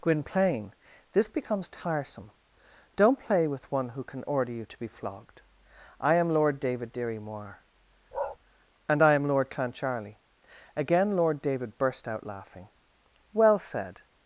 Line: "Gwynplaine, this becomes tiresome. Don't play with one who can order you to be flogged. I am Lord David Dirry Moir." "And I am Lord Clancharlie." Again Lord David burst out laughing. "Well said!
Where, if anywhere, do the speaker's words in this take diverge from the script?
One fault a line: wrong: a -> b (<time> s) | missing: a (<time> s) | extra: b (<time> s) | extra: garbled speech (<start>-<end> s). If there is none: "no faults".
no faults